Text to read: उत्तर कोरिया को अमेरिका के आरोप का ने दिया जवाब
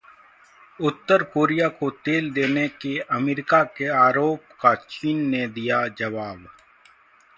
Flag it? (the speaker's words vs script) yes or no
yes